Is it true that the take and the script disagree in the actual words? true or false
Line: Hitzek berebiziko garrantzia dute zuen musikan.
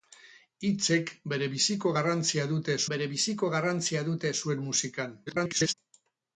true